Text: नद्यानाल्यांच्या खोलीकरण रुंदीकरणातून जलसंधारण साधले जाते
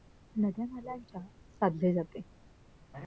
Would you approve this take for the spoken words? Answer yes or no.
no